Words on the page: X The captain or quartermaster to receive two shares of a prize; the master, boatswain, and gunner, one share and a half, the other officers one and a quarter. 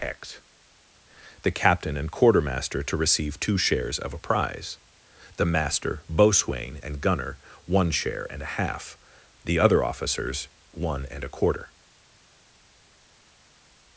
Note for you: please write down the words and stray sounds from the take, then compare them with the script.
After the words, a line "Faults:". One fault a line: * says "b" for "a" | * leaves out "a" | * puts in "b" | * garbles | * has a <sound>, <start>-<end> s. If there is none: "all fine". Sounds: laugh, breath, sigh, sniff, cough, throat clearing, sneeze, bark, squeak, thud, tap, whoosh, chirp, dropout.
X The captain and quartermaster to receive two shares of a prize; the master, boatswain, and gunner, one share and a half, the other officers one and a quarter.
Faults:
* says "and" for "or"